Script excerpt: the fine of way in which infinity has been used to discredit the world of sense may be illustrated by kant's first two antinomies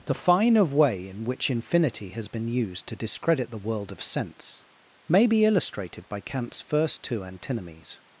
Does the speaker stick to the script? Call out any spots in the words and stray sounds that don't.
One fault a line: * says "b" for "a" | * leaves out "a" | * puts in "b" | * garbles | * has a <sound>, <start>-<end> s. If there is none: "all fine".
all fine